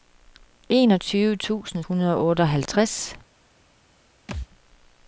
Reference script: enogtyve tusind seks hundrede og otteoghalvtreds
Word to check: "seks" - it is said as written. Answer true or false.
false